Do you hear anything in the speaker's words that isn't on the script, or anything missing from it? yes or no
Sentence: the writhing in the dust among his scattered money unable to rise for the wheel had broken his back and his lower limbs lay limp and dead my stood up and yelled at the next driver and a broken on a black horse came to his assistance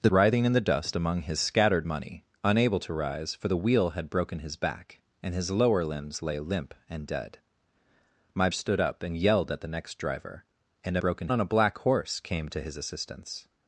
no